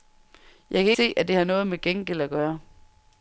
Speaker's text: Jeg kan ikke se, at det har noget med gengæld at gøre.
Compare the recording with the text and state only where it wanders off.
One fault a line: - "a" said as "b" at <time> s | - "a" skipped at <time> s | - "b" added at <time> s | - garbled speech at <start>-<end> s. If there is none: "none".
- "ikke" skipped at 0.9 s